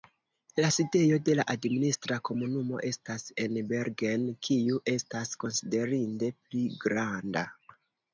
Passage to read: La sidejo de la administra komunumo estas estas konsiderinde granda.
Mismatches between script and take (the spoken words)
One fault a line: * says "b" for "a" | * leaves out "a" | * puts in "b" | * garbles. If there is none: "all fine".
* puts in "en Bergen kiu"
* puts in "pli"